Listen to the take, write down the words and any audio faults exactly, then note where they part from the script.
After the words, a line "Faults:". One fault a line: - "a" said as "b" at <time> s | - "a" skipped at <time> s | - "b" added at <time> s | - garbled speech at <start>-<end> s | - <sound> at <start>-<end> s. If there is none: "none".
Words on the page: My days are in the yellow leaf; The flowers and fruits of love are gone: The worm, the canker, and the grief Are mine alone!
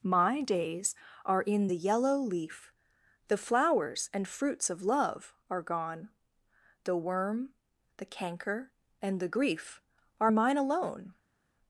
My days are in the yellow leaf; The flowers and fruits of love are gone: The worm, the canker, and the grief Are mine alone!
Faults:
none